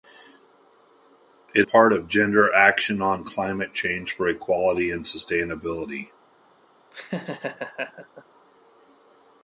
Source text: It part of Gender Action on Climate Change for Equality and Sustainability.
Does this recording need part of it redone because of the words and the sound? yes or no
yes